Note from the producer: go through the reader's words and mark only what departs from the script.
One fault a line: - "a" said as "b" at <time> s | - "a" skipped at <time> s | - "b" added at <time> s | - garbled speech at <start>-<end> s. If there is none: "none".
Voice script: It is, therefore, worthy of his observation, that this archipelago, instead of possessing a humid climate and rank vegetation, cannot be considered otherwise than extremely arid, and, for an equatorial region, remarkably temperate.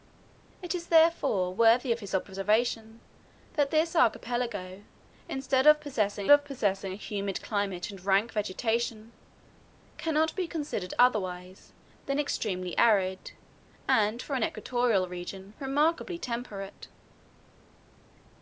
- "of possessing" added at 6.3 s